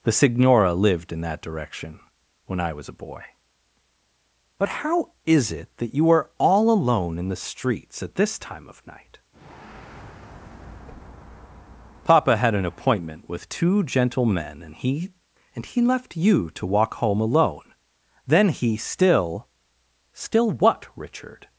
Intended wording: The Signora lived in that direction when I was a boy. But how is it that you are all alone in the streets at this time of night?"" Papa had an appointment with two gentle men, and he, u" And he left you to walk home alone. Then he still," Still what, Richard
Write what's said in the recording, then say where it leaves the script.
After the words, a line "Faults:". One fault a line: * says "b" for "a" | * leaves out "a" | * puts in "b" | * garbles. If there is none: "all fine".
The Signora lived in that direction when I was a boy. But how is it that you are all alone in the streets at this time of night?"" Papa had an appointment with two gentle men, and he" And he left you to walk home alone. Then he still," Still what, Richard
Faults:
* leaves out "u"